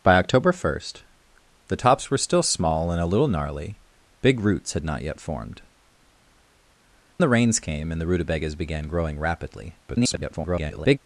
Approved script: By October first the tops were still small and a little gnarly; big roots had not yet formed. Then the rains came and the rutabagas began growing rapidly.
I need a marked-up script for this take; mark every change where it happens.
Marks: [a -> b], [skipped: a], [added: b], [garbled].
By October first the tops were still small and a little gnarly; big roots had not yet formed. [skipped: Then] the rains came and the rutabagas began growing rapidly. [garbled]